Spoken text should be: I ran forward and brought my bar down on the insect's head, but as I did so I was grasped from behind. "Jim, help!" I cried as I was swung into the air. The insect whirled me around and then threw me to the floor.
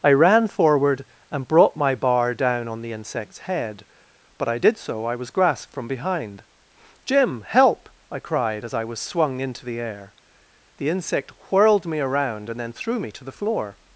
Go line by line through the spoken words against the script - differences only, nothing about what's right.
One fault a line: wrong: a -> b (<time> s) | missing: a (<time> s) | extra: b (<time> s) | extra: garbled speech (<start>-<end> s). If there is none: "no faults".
missing: as (4.5 s)